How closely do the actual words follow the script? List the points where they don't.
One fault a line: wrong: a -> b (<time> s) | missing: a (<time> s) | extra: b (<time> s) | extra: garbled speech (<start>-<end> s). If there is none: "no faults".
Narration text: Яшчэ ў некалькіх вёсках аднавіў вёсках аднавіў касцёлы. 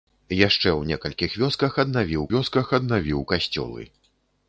no faults